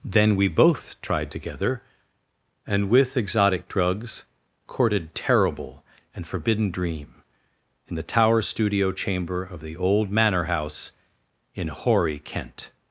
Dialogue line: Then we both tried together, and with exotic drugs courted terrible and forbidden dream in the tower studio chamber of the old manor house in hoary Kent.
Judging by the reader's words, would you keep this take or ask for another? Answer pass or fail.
pass